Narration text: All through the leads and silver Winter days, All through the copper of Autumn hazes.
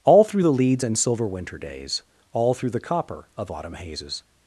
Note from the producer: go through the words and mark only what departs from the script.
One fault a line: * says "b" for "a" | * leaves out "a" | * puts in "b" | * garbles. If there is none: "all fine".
all fine